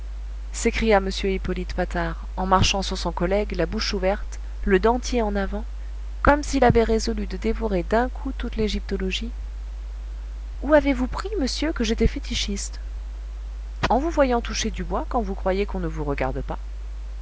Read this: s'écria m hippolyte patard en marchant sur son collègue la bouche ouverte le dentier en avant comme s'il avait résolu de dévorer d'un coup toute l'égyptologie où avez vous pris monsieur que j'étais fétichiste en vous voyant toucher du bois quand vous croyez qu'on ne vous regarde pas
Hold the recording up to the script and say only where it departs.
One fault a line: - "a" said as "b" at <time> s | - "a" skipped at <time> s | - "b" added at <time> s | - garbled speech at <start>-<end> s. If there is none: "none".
none